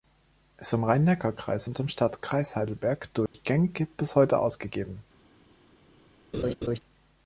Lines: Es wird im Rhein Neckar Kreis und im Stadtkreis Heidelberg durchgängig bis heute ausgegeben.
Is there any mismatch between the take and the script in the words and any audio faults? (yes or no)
yes